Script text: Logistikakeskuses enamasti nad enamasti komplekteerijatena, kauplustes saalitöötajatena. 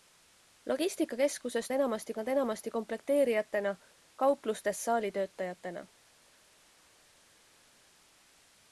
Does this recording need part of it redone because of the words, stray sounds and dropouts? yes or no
no